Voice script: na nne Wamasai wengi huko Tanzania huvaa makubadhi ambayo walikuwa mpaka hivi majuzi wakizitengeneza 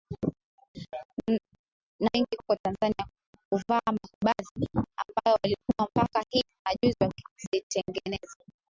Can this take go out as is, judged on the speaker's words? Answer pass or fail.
fail